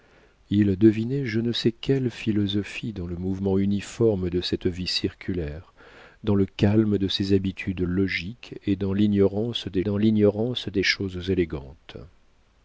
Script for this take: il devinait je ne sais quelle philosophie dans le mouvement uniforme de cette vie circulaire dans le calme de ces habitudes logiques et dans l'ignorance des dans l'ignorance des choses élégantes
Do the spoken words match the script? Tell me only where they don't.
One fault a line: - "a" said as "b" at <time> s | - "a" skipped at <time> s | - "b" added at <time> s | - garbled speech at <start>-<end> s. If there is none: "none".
none